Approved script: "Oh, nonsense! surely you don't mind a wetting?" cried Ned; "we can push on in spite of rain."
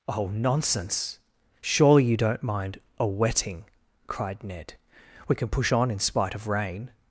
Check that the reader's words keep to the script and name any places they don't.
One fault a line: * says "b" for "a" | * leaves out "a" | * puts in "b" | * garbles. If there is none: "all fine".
all fine